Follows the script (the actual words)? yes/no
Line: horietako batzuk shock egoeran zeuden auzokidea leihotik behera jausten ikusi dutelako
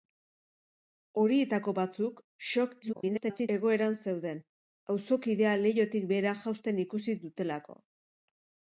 no